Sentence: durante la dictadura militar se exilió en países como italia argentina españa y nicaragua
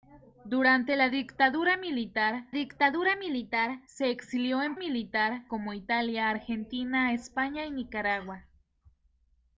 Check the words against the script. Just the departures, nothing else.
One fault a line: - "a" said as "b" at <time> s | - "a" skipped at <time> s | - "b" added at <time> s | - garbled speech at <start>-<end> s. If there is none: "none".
- "dictadura militar" added at 2.5 s
- "países" said as "militar" at 4.8 s